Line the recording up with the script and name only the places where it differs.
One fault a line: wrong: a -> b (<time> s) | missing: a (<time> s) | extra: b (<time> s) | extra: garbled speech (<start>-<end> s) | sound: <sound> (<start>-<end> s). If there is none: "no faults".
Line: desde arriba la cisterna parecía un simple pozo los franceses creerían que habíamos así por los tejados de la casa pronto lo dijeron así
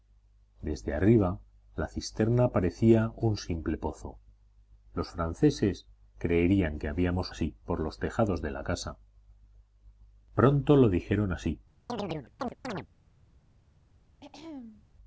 sound: chirp (11.9-12.9 s)
sound: throat clearing (14.2-14.8 s)